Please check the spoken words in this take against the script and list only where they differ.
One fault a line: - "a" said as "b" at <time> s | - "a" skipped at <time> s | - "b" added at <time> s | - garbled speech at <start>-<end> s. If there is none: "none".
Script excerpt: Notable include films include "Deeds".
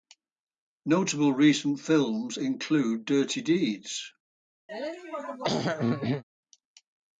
- "include" said as "recent" at 1.3 s
- "Dirty" added at 3.0 s